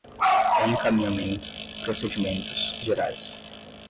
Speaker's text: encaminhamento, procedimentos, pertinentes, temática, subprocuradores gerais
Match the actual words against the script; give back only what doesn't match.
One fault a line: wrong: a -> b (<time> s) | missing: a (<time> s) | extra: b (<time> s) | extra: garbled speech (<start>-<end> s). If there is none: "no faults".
missing: pertinentes temática subprocuradores (2.8 s)